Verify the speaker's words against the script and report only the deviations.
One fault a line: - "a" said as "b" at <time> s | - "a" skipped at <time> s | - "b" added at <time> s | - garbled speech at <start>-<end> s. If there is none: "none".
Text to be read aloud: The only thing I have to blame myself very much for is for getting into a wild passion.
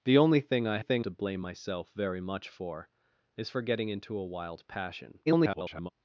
- "have" said as "thing" at 0.8 s
- garbled speech at 5.3-5.9 s